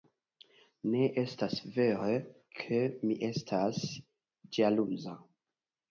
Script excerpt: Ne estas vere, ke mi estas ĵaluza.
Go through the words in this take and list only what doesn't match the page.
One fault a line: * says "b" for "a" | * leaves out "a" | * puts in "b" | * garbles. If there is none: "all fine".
all fine